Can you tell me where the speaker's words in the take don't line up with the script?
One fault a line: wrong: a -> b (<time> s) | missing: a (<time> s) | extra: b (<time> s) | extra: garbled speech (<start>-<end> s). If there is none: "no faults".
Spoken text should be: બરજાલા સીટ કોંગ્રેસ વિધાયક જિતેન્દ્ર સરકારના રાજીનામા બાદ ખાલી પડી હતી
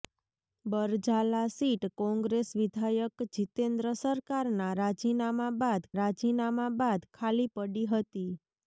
extra: રાજીનામા બાદ (6.0 s)